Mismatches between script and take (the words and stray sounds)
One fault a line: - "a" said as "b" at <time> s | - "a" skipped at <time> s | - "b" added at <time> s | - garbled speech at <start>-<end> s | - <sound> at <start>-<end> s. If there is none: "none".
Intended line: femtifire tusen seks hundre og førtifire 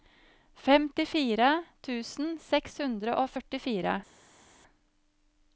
none